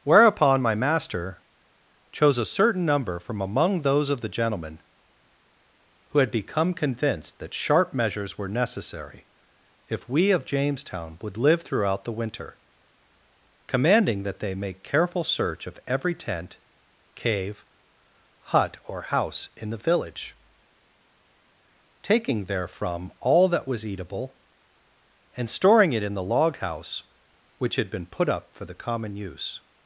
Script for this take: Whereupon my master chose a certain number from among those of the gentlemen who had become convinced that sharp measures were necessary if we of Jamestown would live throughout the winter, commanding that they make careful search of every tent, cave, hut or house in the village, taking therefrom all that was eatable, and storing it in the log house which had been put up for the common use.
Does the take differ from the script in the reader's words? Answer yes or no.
no